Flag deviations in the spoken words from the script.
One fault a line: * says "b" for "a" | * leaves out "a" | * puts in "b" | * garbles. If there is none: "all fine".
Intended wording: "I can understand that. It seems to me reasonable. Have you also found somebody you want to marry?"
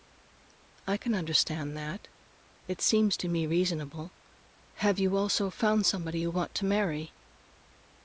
all fine